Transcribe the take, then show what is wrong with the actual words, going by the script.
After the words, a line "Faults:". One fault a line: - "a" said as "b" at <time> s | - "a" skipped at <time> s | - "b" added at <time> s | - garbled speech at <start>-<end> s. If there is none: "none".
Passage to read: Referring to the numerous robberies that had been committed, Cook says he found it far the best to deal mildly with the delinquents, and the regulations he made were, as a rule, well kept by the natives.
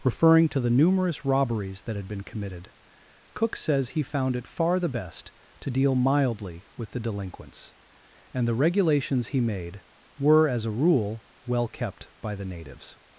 Referring to the numerous robberies that had been committed, Cook says he found it far the best to deal mildly with the delinquents, and the regulations he made were, as a rule, well kept by the natives.
Faults:
none